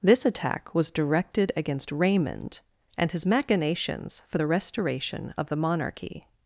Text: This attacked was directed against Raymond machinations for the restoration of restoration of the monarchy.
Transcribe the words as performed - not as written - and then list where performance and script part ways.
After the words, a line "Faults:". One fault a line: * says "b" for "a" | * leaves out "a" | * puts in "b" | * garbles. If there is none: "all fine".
This attack was directed against Raymond and his machinations for the restoration of the monarchy.
Faults:
* says "attack" for "attacked"
* puts in "and his"
* leaves out "restoration of"